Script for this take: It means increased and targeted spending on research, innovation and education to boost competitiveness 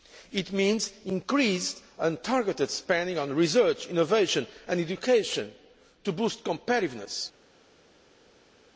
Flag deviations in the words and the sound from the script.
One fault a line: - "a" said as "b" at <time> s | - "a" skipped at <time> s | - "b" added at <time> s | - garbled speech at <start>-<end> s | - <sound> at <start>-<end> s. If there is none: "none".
none